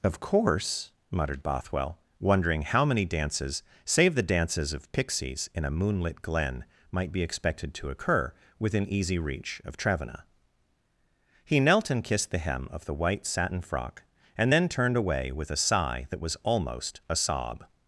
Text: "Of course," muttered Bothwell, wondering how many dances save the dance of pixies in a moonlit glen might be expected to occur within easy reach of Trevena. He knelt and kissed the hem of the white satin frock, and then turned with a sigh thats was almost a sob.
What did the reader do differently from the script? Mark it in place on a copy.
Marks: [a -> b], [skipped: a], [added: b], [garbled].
"Of course," muttered Bothwell, wondering how many dances save the [dance -> dances] of pixies in a moonlit glen might be expected to occur within easy reach of Trevena. He knelt and kissed the hem of the white satin frock, and then turned [added: away] with a sigh [thats -> that] was almost a sob.